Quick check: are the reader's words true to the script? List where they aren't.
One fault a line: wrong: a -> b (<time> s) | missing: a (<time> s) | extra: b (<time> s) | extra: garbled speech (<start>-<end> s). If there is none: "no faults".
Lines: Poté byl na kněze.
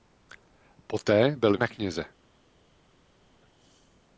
no faults